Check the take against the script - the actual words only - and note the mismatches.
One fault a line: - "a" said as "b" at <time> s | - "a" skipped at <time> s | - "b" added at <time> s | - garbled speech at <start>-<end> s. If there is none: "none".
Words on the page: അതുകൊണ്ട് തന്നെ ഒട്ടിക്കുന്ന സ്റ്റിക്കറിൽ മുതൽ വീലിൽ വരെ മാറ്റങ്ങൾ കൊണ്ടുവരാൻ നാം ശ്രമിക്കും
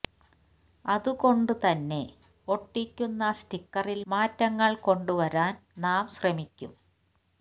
- "മുതൽ വീലിൽ വരെ" skipped at 4.0 s